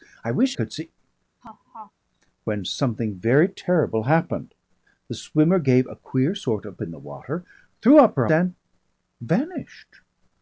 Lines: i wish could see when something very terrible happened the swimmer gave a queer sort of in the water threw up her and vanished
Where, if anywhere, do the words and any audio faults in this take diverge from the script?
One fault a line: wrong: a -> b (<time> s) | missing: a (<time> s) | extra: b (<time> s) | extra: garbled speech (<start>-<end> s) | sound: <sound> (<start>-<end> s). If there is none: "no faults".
sound: laugh (1.4-1.9 s)